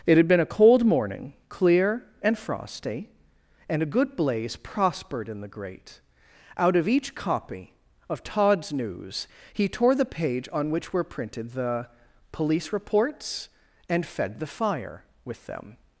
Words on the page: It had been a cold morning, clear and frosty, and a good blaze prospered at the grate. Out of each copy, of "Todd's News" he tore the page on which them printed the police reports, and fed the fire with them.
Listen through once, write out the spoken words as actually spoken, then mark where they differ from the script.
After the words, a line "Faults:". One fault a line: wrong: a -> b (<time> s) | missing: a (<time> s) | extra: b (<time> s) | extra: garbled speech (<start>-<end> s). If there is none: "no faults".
It had been a cold morning, clear and frosty, and a good blaze prospered in the grate. Out of each copy, of "Todd's News" he tore the page on which were printed the police reports, and fed the fire with them.
Faults:
wrong: at -> in (5.3 s)
wrong: them -> were (10.9 s)